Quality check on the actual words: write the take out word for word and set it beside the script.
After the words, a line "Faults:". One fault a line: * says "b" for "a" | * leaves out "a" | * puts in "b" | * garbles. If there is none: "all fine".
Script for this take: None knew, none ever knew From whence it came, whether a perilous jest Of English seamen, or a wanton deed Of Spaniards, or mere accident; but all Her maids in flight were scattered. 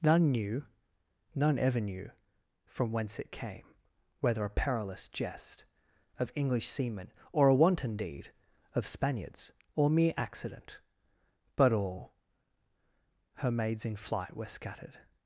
None knew, none ever knew From whence it came, whether a perilous jest Of English seamen, or a wanton deed Of Spaniards, or mere accident; but all Her maids in flight were scattered.
Faults:
all fine